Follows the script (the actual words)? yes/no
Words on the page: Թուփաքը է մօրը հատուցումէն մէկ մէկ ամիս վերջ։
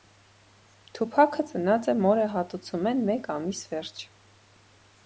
no